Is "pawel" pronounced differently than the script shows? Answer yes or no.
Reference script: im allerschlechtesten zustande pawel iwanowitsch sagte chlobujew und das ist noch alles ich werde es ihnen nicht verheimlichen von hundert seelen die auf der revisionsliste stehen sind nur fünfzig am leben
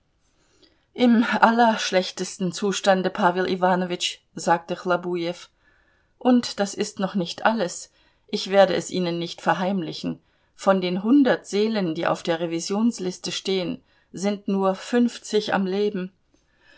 no